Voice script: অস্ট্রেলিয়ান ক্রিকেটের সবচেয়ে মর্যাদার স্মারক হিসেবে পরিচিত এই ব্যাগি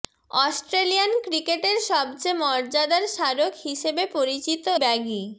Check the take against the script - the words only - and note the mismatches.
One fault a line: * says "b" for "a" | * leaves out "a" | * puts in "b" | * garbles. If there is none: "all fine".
* leaves out "এই"